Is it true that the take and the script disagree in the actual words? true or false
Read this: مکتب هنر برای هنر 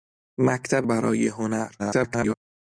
true